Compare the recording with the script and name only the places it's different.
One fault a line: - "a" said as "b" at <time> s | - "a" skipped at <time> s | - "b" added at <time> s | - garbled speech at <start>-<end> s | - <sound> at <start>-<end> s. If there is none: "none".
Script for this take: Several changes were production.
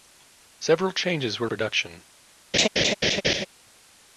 - laugh at 2.5-3.5 s